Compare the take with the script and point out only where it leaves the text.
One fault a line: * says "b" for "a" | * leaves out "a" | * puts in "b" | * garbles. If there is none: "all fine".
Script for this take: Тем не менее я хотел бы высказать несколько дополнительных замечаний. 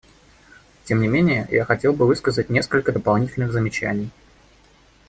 all fine